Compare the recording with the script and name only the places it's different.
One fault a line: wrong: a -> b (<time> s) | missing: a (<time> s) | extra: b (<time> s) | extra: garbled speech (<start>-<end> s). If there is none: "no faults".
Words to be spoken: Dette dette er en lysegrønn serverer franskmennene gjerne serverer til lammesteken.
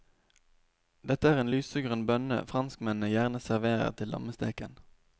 missing: dette (1.3 s)
wrong: serverer -> bønne (2.1 s)